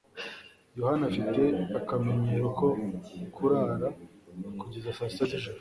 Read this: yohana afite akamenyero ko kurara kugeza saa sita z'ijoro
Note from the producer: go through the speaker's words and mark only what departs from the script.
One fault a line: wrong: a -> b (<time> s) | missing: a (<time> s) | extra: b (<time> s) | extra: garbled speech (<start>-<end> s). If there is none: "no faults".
no faults